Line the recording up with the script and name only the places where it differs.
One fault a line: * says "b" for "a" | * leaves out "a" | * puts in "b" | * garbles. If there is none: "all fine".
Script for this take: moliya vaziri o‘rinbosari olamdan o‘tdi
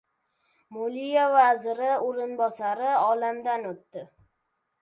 all fine